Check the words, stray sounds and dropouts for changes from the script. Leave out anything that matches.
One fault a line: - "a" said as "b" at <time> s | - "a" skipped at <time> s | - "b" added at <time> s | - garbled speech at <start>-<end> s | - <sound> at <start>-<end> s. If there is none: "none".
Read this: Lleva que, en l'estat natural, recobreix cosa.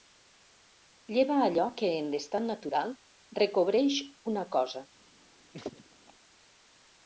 - "allò" added at 1.5 s
- "una" added at 4.3 s
- laugh at 5.5-6.1 s